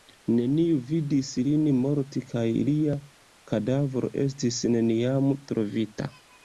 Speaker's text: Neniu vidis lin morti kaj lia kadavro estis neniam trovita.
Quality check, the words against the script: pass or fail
pass